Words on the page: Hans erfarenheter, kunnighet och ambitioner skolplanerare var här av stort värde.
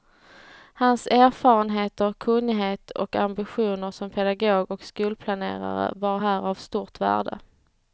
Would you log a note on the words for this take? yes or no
yes